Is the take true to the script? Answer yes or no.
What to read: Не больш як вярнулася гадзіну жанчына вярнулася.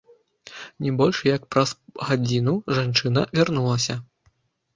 no